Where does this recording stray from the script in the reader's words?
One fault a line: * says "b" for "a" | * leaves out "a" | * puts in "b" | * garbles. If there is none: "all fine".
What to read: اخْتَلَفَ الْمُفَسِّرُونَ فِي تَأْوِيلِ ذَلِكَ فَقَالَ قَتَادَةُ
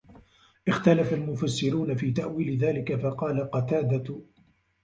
all fine